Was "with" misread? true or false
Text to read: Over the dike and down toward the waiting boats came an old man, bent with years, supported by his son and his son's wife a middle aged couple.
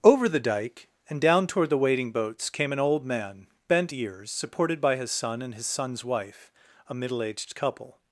true